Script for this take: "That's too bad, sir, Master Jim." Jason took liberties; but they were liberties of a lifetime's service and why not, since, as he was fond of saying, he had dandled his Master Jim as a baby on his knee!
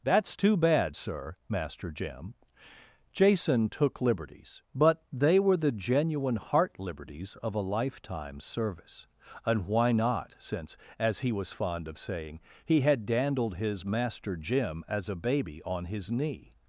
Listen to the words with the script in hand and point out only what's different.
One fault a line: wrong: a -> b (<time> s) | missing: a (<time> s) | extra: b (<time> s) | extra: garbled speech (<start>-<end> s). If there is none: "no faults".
extra: the genuine heart (5.6 s)